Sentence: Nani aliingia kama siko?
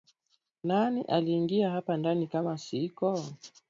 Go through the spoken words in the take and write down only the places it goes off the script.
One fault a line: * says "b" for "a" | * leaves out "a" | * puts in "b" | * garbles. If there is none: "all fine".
* puts in "hapa ndani"